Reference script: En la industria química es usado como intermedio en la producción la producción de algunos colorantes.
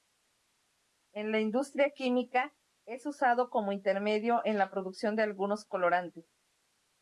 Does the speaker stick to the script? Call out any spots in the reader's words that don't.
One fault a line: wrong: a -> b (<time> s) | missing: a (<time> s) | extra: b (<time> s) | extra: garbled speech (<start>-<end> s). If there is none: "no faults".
missing: la producción (5.2 s)